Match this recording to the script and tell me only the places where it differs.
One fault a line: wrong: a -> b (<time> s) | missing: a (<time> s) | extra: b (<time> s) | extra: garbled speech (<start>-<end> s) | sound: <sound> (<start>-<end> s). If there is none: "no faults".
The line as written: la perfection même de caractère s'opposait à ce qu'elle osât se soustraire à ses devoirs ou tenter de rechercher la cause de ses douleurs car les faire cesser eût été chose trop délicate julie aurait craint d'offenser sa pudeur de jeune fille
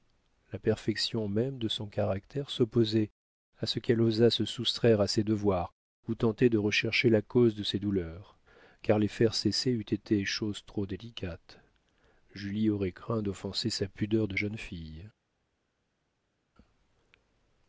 extra: son (1.7 s)